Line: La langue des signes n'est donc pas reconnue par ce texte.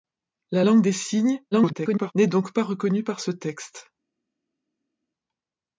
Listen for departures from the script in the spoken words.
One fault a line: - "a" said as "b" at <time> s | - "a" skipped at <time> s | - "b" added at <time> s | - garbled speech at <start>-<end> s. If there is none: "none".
- garbled speech at 1.5-2.1 s